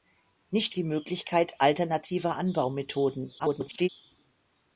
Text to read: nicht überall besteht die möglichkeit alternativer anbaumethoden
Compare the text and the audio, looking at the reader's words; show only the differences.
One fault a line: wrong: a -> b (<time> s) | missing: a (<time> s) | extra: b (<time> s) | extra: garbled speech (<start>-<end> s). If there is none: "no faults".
missing: überall besteht (0.8 s)
extra: garbled speech (3.4-3.9 s)